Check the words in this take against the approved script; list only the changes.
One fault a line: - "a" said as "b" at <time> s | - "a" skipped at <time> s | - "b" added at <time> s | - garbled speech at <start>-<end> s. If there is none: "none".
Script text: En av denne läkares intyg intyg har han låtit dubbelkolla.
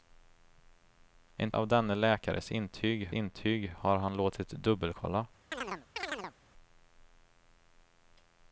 none